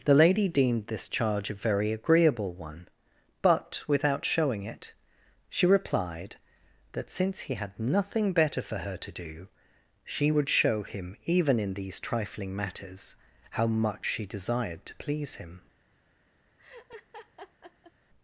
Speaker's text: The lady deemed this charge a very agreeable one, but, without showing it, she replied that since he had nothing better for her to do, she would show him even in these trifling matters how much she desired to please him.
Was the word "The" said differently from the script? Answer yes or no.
no